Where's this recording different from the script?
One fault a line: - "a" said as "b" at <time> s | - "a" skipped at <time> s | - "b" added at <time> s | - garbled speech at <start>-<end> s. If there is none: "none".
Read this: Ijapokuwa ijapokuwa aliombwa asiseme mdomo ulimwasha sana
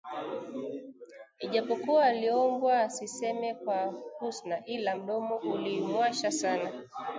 - "ijapokuwa" skipped at 2.0 s
- "kwa Husna ila" added at 3.5 s